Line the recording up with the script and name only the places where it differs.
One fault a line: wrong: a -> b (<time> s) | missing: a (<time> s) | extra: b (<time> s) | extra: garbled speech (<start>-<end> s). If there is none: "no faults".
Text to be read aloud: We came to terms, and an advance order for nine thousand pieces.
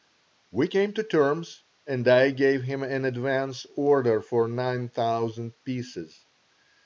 extra: I gave him (2.1 s)